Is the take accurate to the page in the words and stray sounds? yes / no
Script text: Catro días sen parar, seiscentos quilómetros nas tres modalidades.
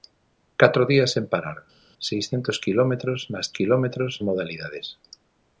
no